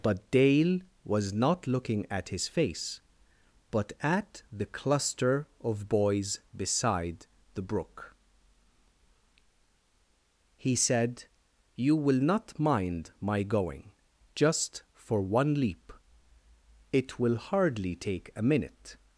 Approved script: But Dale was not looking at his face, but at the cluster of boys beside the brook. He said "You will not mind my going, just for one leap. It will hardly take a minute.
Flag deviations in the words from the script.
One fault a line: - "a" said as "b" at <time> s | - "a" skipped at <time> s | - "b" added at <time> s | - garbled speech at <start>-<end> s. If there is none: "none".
none